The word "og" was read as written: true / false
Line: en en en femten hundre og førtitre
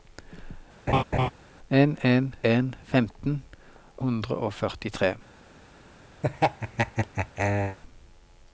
true